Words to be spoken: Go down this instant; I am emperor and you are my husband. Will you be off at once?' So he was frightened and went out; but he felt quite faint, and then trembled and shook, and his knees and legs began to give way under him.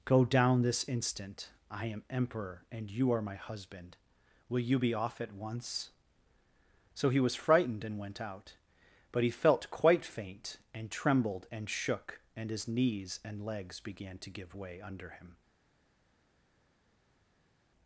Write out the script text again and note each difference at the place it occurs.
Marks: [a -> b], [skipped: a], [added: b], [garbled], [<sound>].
Go down this instant; I am emperor and you are my husband. Will you be off at once?' So he was frightened and went out; but he felt quite faint, and [skipped: then] trembled and shook, and his knees and legs began to give way under him.